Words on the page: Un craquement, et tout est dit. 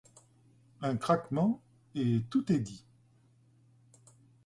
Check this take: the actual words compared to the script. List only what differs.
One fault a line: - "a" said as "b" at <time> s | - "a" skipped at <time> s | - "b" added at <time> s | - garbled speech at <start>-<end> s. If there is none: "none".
none